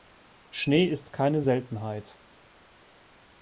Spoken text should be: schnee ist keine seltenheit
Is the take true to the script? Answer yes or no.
yes